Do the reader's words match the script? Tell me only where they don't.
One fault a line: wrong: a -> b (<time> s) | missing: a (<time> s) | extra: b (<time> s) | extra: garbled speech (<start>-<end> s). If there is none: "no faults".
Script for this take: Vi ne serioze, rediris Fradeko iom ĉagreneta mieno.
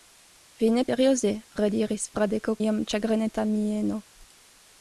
no faults